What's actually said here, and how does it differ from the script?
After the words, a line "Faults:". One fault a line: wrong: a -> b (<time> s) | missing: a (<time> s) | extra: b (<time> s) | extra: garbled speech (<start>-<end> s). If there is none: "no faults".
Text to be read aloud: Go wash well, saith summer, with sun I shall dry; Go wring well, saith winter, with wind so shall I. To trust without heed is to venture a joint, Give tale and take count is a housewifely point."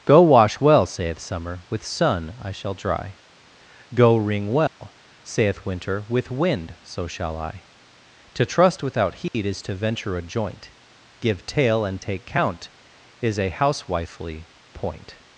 Go wash well, saith summer, with sun I shall dry; Go wring well, saith winter, with wind so shall I. To trust without heed is to venture a joint, Give tale and take count is a housewifely point."
Faults:
no faults